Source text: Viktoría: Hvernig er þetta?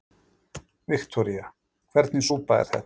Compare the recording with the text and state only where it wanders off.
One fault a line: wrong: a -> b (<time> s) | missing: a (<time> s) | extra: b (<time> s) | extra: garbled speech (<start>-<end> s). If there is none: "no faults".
extra: súpa (2.3 s)